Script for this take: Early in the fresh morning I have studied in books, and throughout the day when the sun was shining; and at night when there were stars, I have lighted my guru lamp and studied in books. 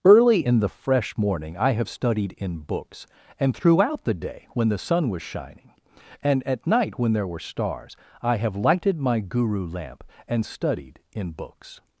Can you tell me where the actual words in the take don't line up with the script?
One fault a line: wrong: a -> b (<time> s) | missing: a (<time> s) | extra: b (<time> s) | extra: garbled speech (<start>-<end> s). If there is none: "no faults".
no faults